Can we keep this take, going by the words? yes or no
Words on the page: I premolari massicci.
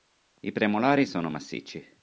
no